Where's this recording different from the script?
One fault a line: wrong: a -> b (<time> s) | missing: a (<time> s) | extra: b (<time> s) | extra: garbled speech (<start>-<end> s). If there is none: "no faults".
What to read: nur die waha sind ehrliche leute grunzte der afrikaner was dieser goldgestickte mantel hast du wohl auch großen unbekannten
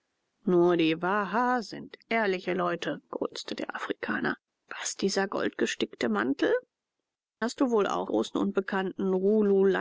no faults